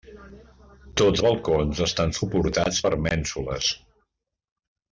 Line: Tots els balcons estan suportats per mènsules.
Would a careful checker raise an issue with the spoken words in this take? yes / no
yes